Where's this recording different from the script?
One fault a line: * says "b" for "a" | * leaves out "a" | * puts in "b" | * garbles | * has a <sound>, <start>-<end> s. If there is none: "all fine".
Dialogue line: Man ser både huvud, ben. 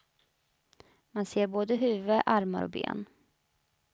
* puts in "armar och"